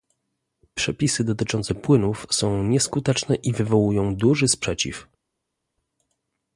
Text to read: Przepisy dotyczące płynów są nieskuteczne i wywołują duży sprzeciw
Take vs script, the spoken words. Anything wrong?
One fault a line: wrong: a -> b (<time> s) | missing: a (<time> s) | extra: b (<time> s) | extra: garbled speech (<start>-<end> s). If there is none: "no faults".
no faults